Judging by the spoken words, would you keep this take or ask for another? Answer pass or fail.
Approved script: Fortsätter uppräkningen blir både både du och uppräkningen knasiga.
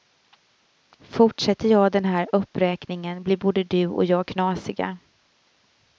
fail